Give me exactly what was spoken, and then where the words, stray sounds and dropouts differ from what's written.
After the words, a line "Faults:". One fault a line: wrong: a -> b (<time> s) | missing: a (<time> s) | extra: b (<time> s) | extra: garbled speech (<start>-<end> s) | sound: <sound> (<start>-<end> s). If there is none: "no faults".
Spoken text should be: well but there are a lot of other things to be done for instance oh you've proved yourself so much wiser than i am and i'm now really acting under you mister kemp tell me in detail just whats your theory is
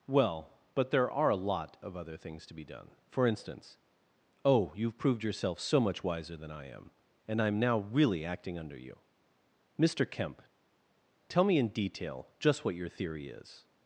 well but there are a lot of other things to be done for instance oh you've proved yourself so much wiser than i am and i'm now really acting under you mister kemp tell me in detail just what your theory is
Faults:
wrong: whats -> what (12.6 s)